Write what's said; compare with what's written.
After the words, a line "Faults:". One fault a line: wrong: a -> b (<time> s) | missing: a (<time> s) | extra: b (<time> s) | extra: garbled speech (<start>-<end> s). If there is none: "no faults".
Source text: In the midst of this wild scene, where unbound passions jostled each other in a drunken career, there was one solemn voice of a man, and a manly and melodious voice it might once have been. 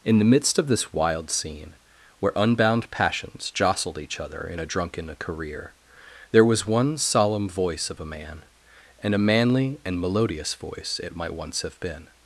In the midst of this wild scene, where unbound passions jostled each other in a drunken career, there was one solemn voice of a man, and a manly and melodious voice it might once have been.
Faults:
no faults